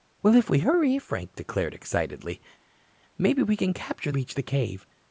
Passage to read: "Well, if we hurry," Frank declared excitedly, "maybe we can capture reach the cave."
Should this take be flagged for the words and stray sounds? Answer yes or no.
no